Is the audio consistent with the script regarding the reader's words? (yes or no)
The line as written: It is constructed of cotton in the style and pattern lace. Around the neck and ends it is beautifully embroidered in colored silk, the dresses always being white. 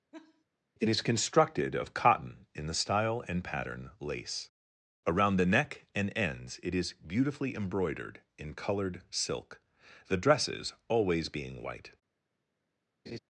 yes